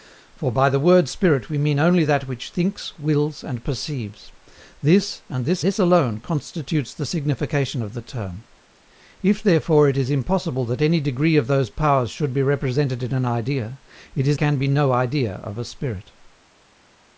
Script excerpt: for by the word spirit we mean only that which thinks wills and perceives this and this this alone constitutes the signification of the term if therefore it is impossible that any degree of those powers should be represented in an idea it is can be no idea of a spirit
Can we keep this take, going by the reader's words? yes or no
yes